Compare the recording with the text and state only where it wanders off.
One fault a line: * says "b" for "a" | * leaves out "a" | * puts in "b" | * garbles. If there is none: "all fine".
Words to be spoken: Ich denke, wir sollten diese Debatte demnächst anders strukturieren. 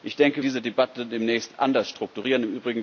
* leaves out "wir sollten"